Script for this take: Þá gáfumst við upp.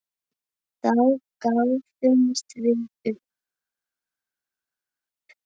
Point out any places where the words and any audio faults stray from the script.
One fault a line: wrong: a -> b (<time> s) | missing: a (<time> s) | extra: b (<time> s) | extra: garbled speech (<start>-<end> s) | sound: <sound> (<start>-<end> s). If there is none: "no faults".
no faults